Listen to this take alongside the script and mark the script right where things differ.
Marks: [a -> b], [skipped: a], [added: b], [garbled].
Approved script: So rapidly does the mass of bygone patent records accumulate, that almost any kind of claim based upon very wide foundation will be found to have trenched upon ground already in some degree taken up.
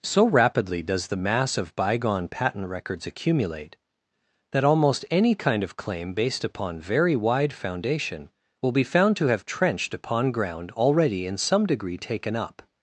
So rapidly does the mass of bygone patent records accumulate, that almost any kind of claim based upon very wide foundation will be found to have trenched upon ground already in some degree taken up.